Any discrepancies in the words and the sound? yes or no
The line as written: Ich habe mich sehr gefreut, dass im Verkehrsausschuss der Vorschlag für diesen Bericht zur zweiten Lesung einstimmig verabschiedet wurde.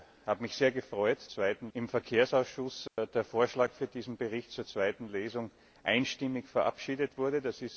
yes